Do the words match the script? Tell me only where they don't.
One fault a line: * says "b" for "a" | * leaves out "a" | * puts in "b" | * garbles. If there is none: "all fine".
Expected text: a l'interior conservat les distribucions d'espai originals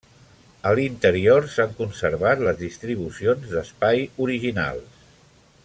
* puts in "s'han"